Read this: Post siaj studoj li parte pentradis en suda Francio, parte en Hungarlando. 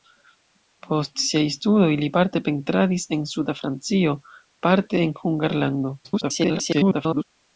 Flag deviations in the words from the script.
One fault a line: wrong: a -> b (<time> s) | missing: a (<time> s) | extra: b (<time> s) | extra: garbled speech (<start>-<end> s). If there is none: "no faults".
extra: garbled speech (6.0-7.2 s)